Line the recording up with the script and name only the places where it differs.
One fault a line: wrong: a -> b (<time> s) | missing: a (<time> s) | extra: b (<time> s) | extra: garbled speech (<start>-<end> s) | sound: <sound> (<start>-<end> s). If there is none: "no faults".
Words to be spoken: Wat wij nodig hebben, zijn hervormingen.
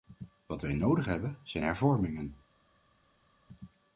no faults